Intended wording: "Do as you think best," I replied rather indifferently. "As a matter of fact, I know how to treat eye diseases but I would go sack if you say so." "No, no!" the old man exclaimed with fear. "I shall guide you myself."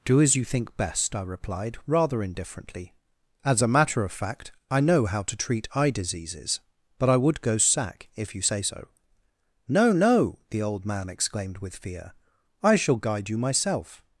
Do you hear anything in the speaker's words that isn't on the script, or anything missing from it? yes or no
no